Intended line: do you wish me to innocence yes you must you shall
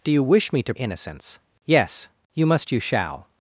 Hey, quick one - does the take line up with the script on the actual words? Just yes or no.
yes